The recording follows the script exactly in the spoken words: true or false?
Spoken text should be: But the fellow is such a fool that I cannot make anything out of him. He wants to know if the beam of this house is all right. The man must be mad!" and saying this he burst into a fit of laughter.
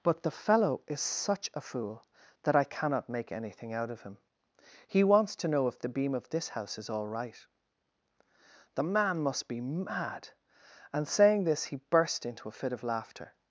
true